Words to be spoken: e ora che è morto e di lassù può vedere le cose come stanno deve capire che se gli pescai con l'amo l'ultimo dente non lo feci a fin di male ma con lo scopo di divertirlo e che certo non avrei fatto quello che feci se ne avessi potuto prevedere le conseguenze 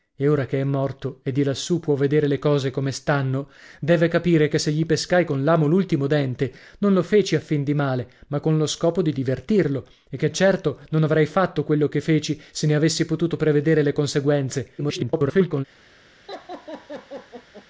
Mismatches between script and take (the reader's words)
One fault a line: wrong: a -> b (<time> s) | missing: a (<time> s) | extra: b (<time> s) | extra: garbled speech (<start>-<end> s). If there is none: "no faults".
extra: garbled speech (14.8-15.6 s)